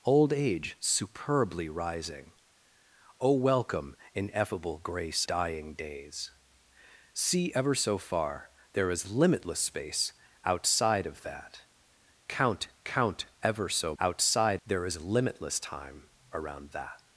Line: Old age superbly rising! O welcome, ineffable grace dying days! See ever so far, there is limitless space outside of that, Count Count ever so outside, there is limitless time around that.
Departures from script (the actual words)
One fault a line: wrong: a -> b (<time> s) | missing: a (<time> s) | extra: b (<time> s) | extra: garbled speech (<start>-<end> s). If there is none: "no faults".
no faults